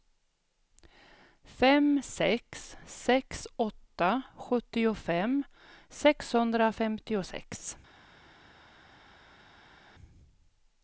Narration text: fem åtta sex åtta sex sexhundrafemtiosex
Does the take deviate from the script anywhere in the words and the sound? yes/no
yes